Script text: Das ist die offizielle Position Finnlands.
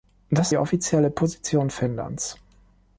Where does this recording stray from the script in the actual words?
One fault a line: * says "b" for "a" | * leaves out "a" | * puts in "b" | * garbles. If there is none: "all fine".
* leaves out "ist"